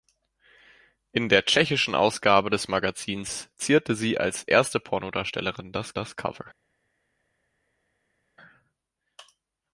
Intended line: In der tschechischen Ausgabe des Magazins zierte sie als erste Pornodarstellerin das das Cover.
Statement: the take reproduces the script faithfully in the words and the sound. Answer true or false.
true